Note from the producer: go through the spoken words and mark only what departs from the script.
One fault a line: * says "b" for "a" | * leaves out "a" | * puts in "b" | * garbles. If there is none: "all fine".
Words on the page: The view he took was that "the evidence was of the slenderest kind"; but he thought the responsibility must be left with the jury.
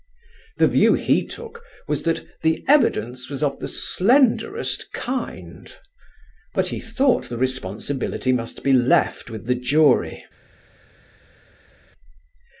all fine